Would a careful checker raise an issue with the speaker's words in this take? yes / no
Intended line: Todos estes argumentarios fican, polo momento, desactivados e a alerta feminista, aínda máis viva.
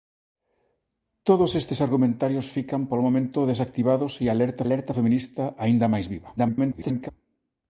yes